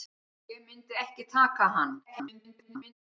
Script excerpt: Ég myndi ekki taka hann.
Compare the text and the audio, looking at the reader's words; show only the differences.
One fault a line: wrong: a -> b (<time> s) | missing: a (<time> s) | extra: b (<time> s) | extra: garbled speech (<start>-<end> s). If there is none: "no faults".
extra: garbled speech (2.0-2.9 s)